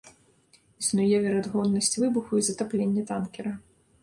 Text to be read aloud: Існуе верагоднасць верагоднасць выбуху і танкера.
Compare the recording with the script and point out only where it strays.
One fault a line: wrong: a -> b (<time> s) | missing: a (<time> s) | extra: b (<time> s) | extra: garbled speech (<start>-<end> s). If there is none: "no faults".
missing: верагоднасць (2.0 s)
extra: затаплення (2.5 s)